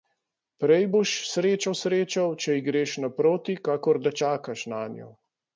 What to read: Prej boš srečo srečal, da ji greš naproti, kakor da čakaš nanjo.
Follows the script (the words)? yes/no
no